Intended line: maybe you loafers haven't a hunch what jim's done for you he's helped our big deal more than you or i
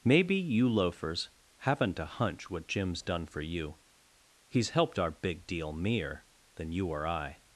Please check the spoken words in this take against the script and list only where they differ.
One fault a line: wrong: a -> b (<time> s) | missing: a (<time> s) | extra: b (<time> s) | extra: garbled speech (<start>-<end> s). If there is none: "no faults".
wrong: more -> mere (5.7 s)